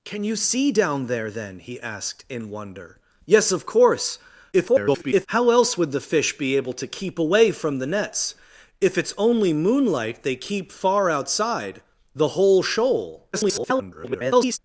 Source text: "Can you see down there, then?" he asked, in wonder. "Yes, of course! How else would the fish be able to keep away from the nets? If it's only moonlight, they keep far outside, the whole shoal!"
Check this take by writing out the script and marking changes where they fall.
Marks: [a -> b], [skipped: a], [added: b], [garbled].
"Can you see down there, then?" he asked, in wonder. "Yes, of course! [garbled] How else would the fish be able to keep away from the nets? If it's only moonlight, they keep far outside, the whole shoal!" [garbled]